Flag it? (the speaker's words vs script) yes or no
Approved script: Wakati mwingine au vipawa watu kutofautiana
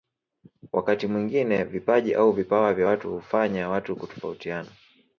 yes